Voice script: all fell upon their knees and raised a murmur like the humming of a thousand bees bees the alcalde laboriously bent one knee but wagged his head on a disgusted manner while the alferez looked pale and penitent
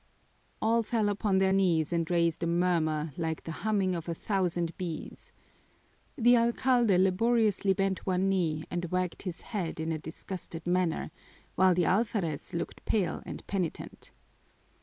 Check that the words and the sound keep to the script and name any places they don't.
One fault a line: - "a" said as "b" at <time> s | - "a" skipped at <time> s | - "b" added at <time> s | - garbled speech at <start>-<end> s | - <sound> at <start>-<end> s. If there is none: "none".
- "bees" skipped at 5.3 s
- "but" said as "and" at 8.7 s
- "on" said as "in" at 9.8 s